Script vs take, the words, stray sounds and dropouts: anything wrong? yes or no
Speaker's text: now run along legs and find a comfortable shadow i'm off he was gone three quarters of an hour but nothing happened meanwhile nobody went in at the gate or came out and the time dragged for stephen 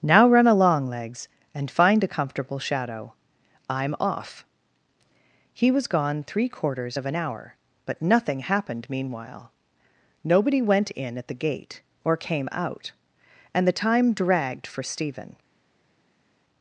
no